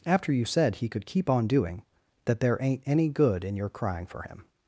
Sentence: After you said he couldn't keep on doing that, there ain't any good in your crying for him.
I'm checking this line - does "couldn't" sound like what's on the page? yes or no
no